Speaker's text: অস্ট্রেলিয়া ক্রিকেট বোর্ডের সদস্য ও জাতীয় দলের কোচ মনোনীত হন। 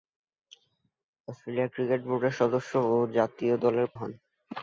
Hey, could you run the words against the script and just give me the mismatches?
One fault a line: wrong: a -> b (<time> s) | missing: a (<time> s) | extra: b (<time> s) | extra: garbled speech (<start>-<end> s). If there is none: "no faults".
missing: কোচ মনোনীত (3.9 s)